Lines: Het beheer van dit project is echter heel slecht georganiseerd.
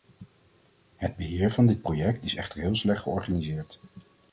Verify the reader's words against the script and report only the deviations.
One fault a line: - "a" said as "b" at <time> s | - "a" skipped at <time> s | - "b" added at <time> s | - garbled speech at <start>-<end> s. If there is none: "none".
none